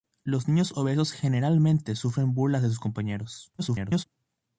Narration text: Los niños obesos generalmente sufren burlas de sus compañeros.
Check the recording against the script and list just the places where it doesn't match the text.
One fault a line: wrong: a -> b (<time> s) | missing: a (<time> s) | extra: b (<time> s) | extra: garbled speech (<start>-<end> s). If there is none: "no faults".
extra: garbled speech (3.6-4.1 s)